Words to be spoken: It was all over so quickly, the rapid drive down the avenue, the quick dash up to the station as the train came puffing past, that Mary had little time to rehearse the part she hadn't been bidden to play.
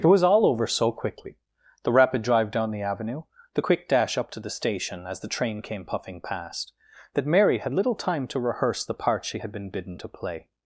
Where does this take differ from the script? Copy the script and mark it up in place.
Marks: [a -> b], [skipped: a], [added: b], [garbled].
It was all over so quickly, the rapid drive down the avenue, the quick dash up to the station as the train came puffing past, that Mary had little time to rehearse the part she [hadn't -> had] been bidden to play.